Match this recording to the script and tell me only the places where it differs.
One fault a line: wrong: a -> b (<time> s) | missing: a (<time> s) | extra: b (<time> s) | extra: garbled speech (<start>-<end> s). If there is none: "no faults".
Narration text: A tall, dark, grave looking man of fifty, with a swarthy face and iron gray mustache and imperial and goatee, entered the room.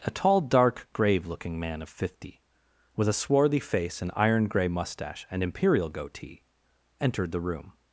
missing: and (5.9 s)